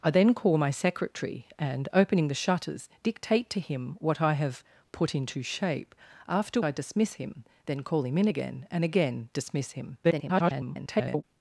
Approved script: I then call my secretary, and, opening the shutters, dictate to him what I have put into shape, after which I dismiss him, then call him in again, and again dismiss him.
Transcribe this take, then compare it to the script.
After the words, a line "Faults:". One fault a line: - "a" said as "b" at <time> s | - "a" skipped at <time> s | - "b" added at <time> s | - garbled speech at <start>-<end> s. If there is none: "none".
I then call my secretary, and, opening the shutters, dictate to him what I have put into shape, after I dismiss him, then call him in again, and again dismiss him. [garbled]
Faults:
- "which" skipped at 6.6 s
- garbled speech at 10.0-11.2 s